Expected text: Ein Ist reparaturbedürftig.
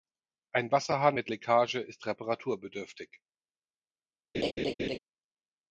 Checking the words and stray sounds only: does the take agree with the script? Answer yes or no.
no